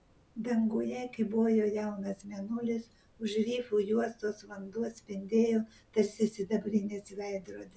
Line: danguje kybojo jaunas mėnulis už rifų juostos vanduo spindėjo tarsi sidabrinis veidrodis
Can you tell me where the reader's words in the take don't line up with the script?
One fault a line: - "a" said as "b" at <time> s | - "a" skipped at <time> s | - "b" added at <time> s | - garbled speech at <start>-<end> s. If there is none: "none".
none